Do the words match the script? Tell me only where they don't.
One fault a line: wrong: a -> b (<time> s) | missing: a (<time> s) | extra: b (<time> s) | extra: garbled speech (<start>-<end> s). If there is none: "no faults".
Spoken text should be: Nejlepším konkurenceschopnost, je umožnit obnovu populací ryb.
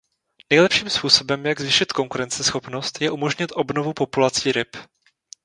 extra: způsobem jak zvýšit (0.9 s)